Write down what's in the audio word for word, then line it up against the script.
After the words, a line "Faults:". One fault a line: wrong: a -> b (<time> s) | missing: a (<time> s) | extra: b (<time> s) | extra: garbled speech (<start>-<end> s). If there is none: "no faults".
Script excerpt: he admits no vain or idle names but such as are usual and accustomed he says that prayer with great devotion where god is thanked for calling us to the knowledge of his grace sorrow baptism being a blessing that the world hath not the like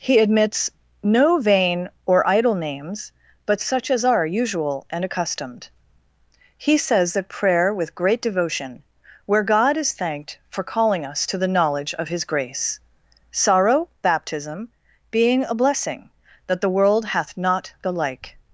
he admits no vain or idle names but such as are usual and accustomed he says that prayer with great devotion where god is thanked for calling us to the knowledge of his grace sorrow baptism being a blessing that the world hath not the like
Faults:
no faults